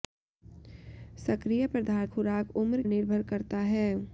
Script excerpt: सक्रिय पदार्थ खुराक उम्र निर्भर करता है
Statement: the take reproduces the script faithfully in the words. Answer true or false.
true